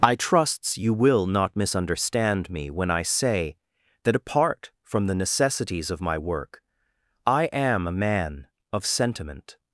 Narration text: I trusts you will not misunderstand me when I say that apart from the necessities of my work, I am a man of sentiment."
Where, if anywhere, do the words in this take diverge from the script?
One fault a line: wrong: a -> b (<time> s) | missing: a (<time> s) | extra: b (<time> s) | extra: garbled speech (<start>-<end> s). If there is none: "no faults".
no faults